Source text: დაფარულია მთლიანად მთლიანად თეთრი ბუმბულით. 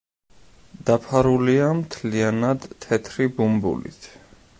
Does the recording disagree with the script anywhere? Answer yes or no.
yes